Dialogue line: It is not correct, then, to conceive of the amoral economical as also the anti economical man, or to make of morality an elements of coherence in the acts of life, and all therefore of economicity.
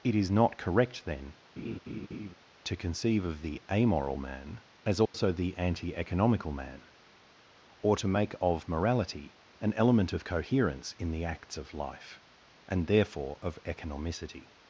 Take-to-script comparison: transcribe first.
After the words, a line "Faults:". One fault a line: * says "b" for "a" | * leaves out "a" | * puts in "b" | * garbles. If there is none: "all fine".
It is not correct, then, to conceive of the amoral man as also the anti economical man, or to make of morality an element of coherence in the acts of life, and therefore of economicity.
Faults:
* says "man" for "economical"
* says "element" for "elements"
* leaves out "all"